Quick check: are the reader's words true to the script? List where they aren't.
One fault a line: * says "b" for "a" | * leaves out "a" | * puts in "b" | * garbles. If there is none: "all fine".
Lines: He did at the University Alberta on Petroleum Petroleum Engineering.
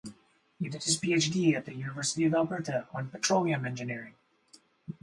* puts in "his PhD"
* puts in "of"
* leaves out "Petroleum"